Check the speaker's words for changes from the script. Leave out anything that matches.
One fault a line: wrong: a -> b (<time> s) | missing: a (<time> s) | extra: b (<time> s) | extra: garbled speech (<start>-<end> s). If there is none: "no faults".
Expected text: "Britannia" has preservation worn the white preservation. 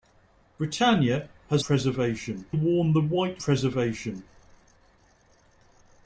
no faults